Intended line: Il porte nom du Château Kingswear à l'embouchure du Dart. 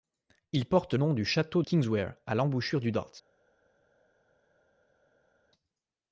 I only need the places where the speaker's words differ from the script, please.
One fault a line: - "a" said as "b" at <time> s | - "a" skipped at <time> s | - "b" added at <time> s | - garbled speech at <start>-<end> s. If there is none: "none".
none